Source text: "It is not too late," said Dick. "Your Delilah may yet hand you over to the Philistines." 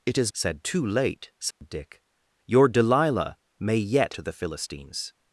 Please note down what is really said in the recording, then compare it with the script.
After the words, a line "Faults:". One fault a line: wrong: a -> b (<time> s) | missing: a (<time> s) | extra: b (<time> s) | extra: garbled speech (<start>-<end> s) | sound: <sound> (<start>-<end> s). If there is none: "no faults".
"It is said too late," said Dick. "Your Delilah may yet to the Philistines."
Faults:
wrong: not -> said (0.3 s)
sound: dropout (1.5-1.6 s)
missing: hand you over (4.2 s)